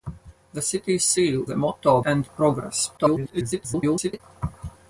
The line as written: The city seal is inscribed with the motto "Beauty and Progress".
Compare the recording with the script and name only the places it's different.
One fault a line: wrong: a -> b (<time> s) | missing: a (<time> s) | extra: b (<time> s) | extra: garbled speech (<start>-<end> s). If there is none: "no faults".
missing: is inscribed with (1.4 s)
missing: Beauty (2.0 s)
extra: garbled speech (3.0-4.2 s)